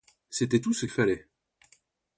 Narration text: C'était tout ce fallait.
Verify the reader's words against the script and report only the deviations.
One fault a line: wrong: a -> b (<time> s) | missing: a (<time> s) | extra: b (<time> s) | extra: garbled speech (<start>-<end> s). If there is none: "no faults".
no faults